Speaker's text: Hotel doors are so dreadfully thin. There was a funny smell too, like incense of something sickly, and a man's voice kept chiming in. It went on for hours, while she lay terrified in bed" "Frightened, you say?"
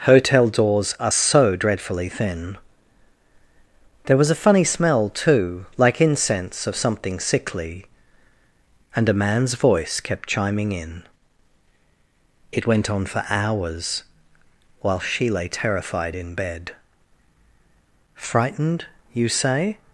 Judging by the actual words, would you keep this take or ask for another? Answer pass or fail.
pass